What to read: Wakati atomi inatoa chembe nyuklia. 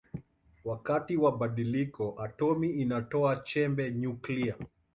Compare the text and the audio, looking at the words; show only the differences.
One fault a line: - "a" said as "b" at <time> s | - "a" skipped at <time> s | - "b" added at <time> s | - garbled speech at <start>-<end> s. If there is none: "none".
- "wa badiliko" added at 1.2 s